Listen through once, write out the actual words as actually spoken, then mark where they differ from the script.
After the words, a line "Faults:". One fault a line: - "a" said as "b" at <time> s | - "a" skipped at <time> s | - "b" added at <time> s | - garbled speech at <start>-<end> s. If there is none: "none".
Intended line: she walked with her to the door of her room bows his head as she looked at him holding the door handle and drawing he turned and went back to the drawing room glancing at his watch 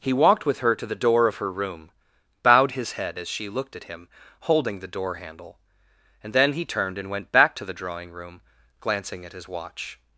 he walked with her to the door of her room bowed his head as she looked at him holding the door handle and then he turned and went back to the drawing room glancing at his watch
Faults:
- "she" said as "he" at 0.0 s
- "bows" said as "bowed" at 2.4 s
- "drawing" said as "then" at 6.3 s